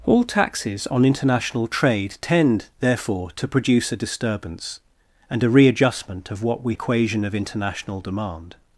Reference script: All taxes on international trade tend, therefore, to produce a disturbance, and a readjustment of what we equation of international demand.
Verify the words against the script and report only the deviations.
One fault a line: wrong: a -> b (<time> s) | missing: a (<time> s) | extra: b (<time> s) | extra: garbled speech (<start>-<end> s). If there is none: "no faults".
no faults